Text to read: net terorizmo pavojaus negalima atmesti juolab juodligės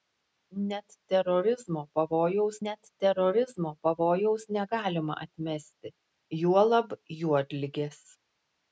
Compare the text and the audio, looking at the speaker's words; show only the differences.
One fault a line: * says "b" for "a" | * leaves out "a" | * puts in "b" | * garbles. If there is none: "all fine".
* puts in "net terorizmo pavojaus"